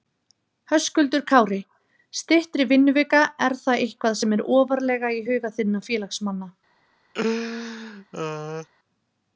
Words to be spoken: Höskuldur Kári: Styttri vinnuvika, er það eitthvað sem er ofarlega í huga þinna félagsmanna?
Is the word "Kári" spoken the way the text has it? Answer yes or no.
yes